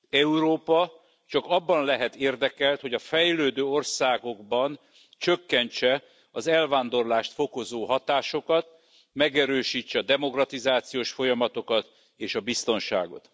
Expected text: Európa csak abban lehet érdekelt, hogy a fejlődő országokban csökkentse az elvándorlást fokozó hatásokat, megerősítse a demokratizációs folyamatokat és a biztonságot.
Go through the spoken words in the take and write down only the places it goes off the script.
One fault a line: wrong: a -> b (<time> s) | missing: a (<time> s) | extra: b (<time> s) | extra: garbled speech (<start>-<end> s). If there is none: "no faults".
no faults